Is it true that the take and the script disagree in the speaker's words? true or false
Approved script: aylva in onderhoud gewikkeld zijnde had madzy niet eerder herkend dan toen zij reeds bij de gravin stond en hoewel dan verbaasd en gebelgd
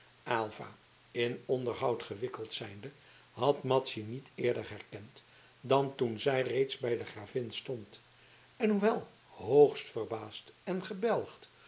true